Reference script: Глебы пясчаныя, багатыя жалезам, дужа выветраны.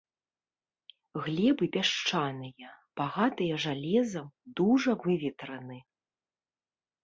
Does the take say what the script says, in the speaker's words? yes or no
yes